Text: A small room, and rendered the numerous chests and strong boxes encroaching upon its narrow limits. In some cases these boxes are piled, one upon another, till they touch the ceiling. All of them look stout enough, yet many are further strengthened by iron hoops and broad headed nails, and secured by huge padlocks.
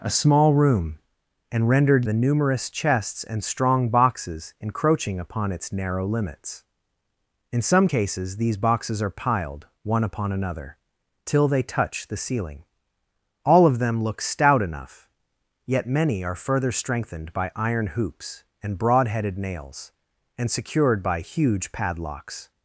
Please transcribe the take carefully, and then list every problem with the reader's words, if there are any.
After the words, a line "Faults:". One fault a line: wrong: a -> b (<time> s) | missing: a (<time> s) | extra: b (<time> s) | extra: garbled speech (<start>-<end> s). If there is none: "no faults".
A small room, and rendered the numerous chests and strong boxes encroaching upon its narrow limits. In some cases these boxes are piled, one upon another, till they touch the ceiling. All of them look stout enough, yet many are further strengthened by iron hoops and broad headed nails, and secured by huge padlocks.
Faults:
no faults